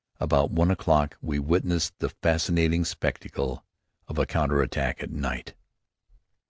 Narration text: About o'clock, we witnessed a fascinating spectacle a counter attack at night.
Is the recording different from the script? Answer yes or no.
yes